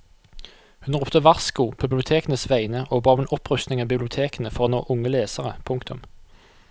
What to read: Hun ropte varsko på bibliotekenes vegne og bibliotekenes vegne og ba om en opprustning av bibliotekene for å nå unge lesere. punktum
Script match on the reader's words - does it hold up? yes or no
no